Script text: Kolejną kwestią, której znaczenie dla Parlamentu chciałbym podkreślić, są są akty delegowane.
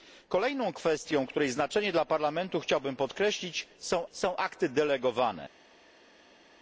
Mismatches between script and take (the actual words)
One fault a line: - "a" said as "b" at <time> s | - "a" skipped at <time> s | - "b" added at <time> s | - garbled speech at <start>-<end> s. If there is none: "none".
none